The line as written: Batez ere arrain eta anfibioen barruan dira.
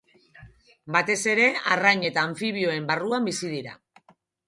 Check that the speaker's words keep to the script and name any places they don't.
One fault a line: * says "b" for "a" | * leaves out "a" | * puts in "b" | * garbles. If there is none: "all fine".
* puts in "bizi"